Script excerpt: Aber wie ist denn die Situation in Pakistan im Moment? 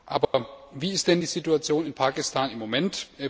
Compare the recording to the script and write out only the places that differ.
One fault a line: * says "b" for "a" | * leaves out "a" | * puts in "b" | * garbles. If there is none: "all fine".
all fine